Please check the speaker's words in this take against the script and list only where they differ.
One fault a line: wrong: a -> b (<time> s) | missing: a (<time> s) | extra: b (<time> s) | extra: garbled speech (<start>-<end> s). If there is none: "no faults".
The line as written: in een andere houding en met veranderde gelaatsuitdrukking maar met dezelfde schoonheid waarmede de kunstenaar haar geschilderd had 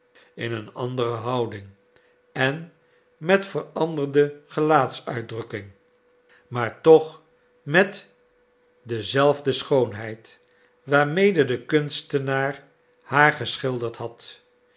extra: toch (6.8 s)